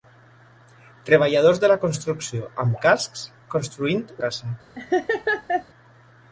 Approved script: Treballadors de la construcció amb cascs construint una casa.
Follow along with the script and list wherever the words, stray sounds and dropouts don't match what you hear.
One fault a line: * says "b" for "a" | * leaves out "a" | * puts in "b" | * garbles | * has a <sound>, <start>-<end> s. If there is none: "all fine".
* leaves out "una"
* has a laugh, 4.7-5.6 s